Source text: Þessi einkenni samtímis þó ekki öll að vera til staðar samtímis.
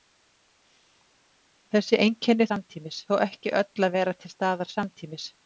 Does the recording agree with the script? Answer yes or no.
yes